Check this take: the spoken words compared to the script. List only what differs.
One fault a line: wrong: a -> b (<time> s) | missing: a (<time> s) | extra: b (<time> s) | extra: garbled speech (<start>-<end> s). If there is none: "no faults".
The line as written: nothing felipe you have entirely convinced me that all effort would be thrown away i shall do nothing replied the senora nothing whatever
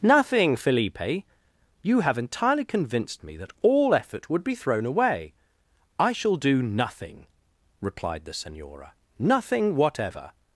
no faults